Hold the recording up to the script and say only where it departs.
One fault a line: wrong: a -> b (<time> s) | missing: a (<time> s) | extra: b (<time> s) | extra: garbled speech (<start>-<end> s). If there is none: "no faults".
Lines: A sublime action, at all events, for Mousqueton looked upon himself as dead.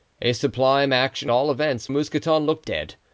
missing: at (1.3 s)
missing: for (1.9 s)
missing: upon himself as (2.7 s)